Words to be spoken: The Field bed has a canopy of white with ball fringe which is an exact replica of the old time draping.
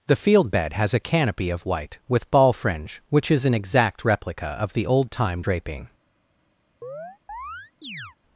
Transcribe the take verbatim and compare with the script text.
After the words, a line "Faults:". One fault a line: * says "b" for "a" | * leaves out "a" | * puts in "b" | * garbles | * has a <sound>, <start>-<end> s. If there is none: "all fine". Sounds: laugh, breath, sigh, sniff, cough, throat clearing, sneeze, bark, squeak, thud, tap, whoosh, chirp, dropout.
The Field bed has a canopy of white with ball fringe which is an exact replica of the old time draping.
Faults:
* has a chirp, 6.8-8.2 s